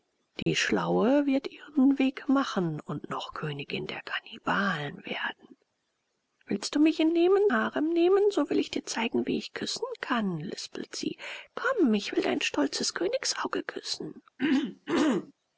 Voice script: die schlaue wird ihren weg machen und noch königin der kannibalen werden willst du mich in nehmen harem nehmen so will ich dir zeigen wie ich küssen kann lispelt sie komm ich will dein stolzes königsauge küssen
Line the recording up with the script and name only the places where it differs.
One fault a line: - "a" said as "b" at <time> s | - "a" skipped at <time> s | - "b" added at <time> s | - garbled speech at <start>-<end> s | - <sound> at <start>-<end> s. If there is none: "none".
- dropout at 0.4-0.5 s
- throat clearing at 14.4-15.3 s